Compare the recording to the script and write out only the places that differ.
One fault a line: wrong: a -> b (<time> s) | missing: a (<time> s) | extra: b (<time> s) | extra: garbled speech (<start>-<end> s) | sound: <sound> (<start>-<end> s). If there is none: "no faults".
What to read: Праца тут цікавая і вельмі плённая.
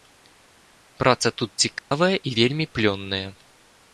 sound: dropout (1.8-1.9 s)